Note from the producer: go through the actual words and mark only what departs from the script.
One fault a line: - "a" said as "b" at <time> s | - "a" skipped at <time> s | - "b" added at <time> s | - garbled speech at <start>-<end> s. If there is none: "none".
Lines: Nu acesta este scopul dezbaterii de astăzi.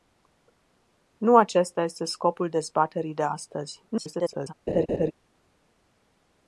- garbled speech at 3.9-4.5 s